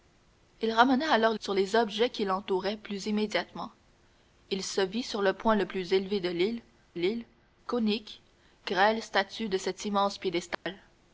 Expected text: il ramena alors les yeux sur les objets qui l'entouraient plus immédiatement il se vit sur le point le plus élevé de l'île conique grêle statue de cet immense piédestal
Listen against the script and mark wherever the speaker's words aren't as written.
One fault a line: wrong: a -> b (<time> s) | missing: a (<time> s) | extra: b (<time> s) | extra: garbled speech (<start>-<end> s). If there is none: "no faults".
missing: les yeux (1.4 s)
extra: l'île (6.9 s)